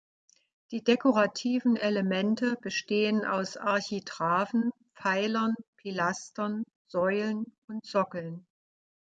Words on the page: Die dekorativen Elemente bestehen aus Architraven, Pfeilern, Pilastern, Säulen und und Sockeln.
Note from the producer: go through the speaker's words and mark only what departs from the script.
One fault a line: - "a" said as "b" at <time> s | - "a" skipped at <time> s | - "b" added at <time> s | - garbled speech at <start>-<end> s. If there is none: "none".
- "und" skipped at 7.8 s